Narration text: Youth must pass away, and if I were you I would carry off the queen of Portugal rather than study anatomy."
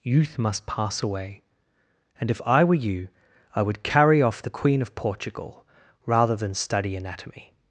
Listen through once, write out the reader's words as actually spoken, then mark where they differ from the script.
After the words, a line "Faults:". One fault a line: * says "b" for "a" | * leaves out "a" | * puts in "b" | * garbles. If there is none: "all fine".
Youth must pass away, and if I were you I would carry off the queen of Portugal rather than study anatomy."
Faults:
all fine